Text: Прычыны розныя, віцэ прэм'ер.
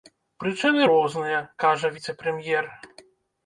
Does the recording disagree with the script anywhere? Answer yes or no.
yes